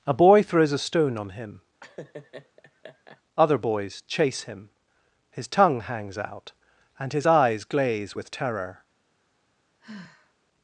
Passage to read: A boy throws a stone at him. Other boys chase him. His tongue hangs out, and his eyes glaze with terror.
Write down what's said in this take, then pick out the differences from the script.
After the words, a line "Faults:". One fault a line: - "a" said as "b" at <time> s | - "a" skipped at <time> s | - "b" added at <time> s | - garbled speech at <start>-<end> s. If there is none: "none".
A boy throws a stone on him. Other boys chase him. His tongue hangs out, and his eyes glaze with terror.
Faults:
- "at" said as "on" at 1.2 s